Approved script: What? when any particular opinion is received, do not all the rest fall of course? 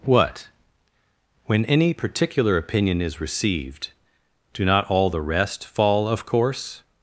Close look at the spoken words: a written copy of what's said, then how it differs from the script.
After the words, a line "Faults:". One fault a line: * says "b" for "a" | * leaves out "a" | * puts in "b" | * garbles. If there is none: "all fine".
What? when any particular opinion is received, do not all the rest fall of course?
Faults:
all fine